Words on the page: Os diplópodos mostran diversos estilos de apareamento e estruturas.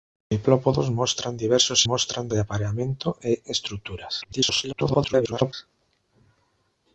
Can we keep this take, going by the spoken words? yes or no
no